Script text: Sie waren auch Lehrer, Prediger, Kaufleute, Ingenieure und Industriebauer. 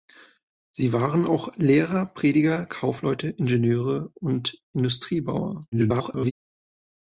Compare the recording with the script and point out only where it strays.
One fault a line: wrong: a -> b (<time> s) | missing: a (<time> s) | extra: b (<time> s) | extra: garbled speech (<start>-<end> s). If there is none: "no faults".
extra: garbled speech (5.7-6.3 s)